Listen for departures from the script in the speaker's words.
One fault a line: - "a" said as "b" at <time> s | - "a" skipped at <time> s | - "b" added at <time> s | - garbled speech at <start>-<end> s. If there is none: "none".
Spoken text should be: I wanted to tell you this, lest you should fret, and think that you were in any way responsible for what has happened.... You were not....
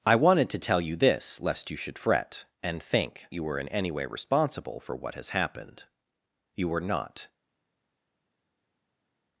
- "that" skipped at 3.2 s